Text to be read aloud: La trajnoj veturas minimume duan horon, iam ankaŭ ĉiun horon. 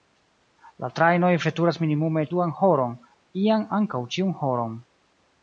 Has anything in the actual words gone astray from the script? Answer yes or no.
no